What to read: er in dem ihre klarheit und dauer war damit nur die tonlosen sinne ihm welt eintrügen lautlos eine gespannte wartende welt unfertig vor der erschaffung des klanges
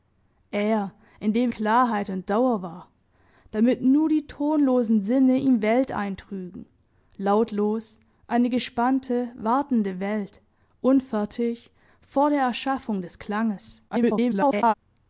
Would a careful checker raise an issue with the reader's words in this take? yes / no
yes